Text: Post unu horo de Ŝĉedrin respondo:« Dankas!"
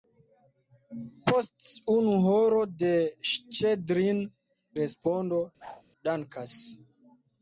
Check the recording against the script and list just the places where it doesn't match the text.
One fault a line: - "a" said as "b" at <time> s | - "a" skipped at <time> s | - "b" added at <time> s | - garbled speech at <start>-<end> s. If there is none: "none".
none